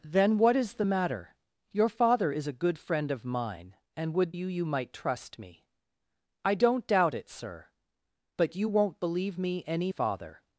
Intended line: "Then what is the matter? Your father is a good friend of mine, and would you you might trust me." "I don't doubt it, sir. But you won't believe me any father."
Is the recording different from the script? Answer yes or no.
no